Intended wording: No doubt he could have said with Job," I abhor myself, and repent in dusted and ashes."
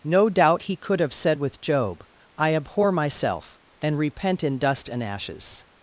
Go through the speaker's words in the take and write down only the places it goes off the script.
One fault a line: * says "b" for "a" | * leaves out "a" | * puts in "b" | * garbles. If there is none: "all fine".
* says "dust" for "dusted"